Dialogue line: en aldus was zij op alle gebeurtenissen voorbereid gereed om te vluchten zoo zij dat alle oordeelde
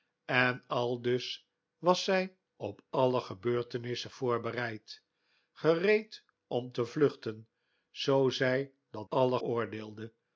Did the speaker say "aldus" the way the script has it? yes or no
yes